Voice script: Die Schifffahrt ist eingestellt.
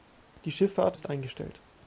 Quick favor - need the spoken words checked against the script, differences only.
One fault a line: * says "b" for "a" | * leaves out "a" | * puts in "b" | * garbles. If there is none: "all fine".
all fine